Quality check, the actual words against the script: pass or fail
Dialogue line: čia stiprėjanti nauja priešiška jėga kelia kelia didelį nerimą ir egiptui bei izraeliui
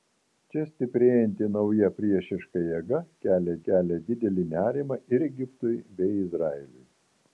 pass